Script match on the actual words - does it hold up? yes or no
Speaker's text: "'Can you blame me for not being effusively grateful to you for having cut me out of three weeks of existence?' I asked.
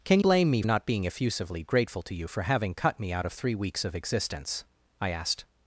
no